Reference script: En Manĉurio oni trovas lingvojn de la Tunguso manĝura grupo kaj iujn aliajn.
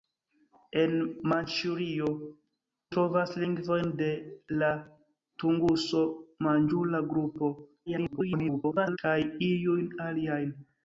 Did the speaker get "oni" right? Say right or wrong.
wrong